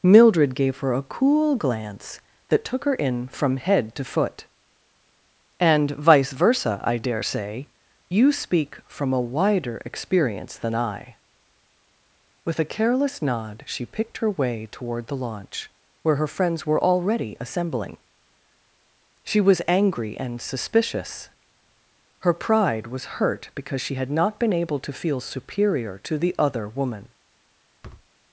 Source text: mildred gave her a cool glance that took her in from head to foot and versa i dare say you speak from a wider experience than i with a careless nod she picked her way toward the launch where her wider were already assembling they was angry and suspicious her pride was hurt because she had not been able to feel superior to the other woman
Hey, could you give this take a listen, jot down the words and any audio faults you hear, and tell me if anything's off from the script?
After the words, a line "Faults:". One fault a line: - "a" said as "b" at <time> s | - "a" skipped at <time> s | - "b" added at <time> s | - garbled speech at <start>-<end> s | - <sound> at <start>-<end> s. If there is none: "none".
mildred gave her a cool glance that took her in from head to foot and vice versa i dare say you speak from a wider experience than i with a careless nod she picked her way toward the launch where her friends were already assembling she was angry and suspicious her pride was hurt because she had not been able to feel superior to the other woman
Faults:
- "vice" added at 5.9 s
- "wider" said as "friends" at 16.3 s
- "they" said as "she" at 19.2 s
- thud at 27.8-28.1 s